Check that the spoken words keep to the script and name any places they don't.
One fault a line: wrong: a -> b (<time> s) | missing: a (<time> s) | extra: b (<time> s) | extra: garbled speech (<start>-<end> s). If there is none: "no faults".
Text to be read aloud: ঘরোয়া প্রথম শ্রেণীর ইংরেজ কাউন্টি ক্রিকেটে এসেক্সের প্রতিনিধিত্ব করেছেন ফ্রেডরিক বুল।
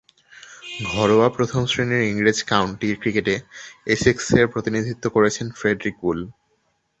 no faults